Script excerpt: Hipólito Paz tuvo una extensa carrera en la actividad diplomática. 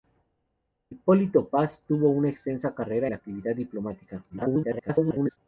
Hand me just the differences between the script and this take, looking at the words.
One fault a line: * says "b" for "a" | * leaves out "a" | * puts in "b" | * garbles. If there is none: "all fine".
* leaves out "en"
* garbles